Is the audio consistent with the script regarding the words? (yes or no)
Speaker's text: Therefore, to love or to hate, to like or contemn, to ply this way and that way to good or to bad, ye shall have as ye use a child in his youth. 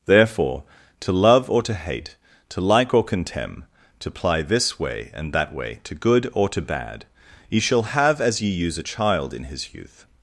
yes